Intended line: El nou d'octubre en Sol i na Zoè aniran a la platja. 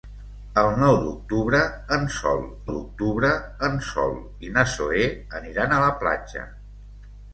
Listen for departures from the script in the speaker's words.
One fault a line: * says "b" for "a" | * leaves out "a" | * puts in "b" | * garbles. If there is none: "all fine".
* puts in "d'octubre en Sol"